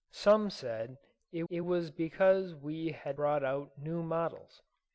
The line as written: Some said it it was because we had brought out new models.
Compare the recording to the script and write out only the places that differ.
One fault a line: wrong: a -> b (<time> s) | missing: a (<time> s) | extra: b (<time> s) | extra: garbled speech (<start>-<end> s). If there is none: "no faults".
no faults